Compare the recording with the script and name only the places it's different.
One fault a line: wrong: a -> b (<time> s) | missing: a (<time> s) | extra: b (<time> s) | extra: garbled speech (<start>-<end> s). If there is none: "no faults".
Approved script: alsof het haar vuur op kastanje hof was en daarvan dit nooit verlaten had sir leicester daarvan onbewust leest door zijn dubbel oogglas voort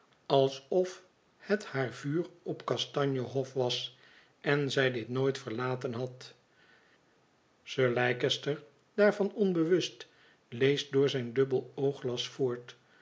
wrong: daarvan -> zij (4.7 s)